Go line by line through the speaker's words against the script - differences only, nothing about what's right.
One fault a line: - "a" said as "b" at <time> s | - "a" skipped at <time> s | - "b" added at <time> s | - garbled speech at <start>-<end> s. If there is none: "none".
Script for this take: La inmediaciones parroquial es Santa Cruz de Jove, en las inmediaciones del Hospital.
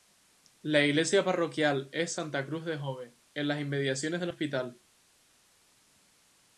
- "inmediaciones" said as "iglesia" at 0.8 s